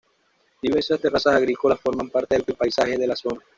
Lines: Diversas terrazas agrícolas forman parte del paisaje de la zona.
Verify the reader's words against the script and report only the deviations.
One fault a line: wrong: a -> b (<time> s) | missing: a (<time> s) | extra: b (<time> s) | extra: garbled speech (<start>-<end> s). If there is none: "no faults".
extra: del (2.4 s)